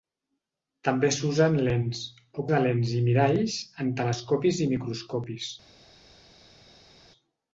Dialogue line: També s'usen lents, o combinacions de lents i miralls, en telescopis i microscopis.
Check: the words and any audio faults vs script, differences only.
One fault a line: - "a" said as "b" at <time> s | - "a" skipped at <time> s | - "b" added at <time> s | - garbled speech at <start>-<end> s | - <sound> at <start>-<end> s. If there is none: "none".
- "combinacions" skipped at 2.5 s